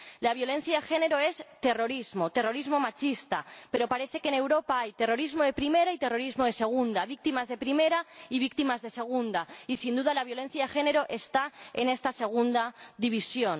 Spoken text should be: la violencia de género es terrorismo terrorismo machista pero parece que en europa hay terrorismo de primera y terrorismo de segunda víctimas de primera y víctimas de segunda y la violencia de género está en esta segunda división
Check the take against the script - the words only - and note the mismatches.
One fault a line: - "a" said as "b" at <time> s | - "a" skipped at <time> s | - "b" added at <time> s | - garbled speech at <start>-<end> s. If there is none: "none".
- "sin duda" added at 9.8 s